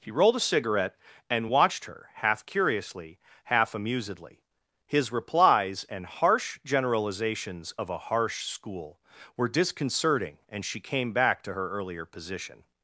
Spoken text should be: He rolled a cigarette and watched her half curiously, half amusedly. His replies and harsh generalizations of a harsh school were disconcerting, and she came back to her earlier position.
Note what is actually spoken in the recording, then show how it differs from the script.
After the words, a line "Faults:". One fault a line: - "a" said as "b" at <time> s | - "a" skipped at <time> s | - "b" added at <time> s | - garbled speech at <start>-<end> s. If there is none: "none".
He rolled a cigarette and watched her half curiously, half amusedly. His replies and harsh generalizations of a harsh school were disconcerting, and she came back to her earlier position.
Faults:
none